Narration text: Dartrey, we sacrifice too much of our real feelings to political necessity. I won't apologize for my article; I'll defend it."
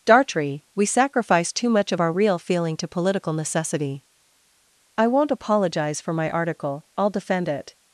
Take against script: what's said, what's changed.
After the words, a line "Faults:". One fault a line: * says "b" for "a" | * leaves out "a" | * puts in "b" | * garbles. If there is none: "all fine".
Dartrey, we sacrifice too much of our real feeling to political necessity. I won't apologize for my article; I'll defend it."
Faults:
* says "feeling" for "feelings"